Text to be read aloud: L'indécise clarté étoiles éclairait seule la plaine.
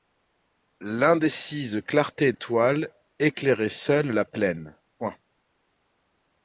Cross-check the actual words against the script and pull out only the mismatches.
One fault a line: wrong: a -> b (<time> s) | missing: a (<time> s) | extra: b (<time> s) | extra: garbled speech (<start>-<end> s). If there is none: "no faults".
no faults